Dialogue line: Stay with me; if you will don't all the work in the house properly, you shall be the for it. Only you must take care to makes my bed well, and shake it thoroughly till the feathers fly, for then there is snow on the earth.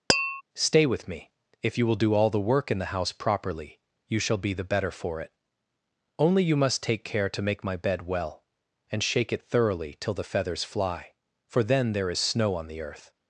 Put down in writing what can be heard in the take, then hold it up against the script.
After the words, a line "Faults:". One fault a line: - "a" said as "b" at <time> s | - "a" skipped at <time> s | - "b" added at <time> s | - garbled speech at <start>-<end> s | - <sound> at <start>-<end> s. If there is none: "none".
Stay with me; if you will do all the work in the house properly, you shall be the better for it. Only you must take care to make my bed well, and shake it thoroughly till the feathers fly, for then there is snow on the earth.
Faults:
- tap at 0.1-0.4 s
- "don't" said as "do" at 2.0 s
- "better" added at 4.6 s
- "makes" said as "make" at 7.4 s